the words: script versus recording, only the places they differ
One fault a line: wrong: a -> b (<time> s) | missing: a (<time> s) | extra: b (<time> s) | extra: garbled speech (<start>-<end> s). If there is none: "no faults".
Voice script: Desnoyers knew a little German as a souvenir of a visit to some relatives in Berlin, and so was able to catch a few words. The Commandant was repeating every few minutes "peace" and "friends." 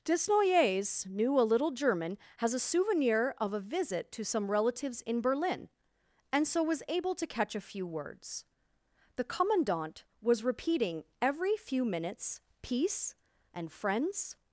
wrong: as -> has (2.4 s)